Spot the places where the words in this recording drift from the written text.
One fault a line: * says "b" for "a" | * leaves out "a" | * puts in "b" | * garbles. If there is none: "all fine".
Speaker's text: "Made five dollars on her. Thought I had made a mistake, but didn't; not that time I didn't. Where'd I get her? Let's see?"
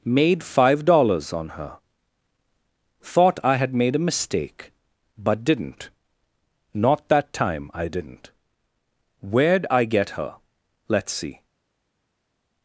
all fine